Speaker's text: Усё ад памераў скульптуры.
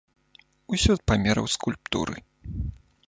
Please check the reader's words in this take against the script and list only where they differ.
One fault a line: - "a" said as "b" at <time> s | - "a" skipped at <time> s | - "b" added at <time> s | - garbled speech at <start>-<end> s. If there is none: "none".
none